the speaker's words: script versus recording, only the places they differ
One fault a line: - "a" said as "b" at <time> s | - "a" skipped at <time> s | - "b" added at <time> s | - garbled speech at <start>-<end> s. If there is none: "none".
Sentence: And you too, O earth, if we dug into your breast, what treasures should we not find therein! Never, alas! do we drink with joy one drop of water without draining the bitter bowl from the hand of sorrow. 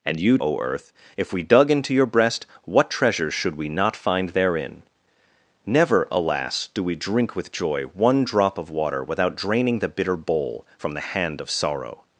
- "too" skipped at 0.4 s